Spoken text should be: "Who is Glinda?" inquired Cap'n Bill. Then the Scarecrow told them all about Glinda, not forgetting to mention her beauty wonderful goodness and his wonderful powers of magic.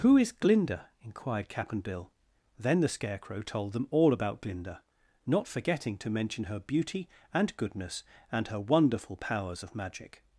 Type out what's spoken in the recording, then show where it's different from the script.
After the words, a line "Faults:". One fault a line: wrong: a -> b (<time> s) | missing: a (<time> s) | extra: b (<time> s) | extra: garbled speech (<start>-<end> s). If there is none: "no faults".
"Who is Glinda?" inquired Cap'n Bill. Then the Scarecrow told them all about Glinda, not forgetting to mention her beauty and goodness and her wonderful powers of magic.
Faults:
wrong: wonderful -> and (7.3 s)
wrong: his -> her (8.5 s)